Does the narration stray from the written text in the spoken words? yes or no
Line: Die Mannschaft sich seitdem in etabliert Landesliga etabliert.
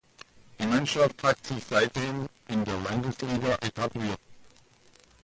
yes